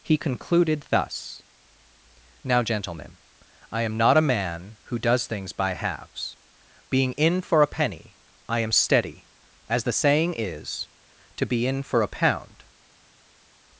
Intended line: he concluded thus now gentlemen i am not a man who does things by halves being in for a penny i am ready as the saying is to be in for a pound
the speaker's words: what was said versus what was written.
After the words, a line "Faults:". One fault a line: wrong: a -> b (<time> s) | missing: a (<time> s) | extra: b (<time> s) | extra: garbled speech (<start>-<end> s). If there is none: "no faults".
he concluded thus now gentlemen i am not a man who does things by halves being in for a penny i am steady as the saying is to be in for a pound
Faults:
wrong: ready -> steady (8.7 s)